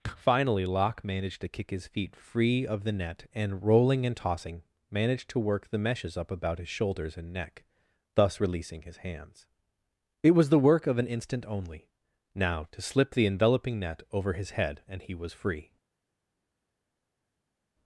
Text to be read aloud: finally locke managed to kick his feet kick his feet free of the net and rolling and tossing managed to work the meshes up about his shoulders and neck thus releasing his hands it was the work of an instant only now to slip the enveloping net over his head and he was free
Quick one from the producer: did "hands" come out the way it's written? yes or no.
yes